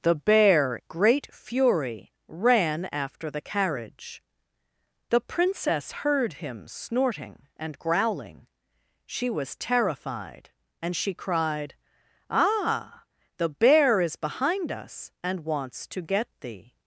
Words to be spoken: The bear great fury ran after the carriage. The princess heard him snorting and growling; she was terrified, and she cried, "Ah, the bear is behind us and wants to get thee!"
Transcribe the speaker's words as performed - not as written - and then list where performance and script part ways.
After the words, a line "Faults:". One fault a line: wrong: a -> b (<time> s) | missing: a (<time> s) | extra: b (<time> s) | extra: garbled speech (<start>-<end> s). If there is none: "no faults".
The bear great fury ran after the carriage. The princess heard him snorting and growling; she was terrified, and she cried, "Ah, the bear is behind us and wants to get thee!"
Faults:
no faults